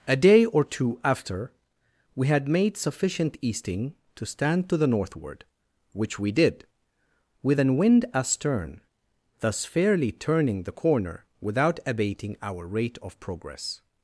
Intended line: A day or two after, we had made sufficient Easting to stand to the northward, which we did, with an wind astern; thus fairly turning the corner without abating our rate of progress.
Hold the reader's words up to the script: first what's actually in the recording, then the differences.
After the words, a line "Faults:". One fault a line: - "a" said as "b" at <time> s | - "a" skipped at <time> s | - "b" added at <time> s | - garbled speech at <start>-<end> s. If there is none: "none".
A day or two after, we had made sufficient Easting to stand to the northward, which we did, with an wind astern; thus fairly turning the corner without abating our rate of progress.
Faults:
none